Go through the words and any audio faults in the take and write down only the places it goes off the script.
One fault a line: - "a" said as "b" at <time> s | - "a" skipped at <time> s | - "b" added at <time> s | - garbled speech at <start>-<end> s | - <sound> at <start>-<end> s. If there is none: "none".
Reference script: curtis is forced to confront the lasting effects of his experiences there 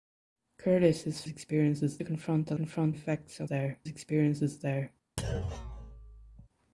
- "forced" said as "experiences" at 1.3 s
- "lasting" said as "confront" at 2.5 s
- "his" said as "there" at 3.4 s
- thud at 5.2-6.5 s